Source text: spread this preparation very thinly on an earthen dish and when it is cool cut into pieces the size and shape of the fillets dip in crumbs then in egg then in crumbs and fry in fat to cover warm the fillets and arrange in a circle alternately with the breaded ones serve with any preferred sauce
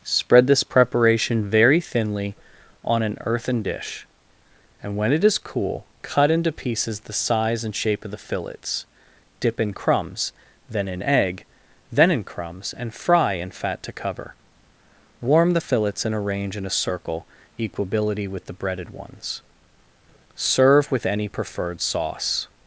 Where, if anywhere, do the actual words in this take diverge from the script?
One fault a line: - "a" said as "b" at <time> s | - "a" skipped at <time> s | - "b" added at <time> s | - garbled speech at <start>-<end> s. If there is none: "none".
- "alternately" said as "equability" at 17.6 s